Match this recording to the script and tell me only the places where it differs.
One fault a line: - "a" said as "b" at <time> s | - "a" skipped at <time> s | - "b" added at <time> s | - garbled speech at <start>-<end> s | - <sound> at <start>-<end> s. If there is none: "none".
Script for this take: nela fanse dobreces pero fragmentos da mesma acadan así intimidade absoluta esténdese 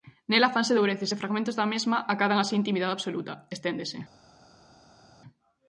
- "pero" said as "e" at 1.1 s